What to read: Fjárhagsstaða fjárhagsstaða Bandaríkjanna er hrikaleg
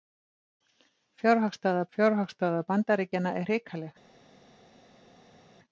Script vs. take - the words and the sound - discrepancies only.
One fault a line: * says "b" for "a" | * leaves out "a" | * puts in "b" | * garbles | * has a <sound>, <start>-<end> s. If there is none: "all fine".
all fine